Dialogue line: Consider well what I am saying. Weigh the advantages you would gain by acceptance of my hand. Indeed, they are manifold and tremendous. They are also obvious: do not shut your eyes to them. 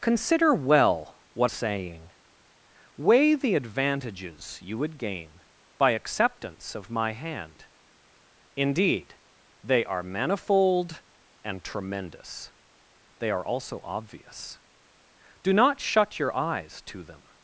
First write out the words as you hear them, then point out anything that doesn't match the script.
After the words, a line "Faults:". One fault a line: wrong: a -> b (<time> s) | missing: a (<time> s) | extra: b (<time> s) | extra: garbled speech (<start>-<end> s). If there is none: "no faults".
Consider well what saying. Weigh the advantages you would gain by acceptance of my hand. Indeed, they are manifold and tremendous. They are also obvious: do not shut your eyes to them.
Faults:
missing: I am (1.5 s)